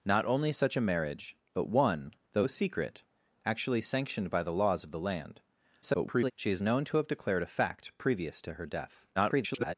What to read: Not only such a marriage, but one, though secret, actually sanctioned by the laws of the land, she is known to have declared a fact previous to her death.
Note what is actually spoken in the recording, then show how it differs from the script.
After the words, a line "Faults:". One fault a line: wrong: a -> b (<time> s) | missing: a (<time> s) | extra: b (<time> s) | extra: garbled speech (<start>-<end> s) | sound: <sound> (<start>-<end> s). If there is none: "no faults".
Not only such a marriage, but one, though secret, actually sanctioned by the laws of the land, [garbled] she is known to have declared a fact previous to her death. [garbled]
Faults:
extra: garbled speech (5.8-6.3 s)
extra: garbled speech (9.2-9.7 s)